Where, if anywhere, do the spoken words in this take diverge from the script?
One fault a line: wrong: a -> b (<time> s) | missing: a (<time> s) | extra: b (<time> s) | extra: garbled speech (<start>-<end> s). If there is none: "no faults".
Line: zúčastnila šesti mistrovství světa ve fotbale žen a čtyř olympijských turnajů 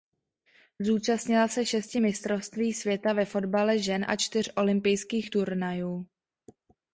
extra: se (1.5 s)